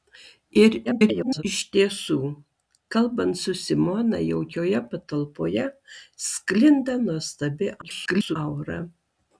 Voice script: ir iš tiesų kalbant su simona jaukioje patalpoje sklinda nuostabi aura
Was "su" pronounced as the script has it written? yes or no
yes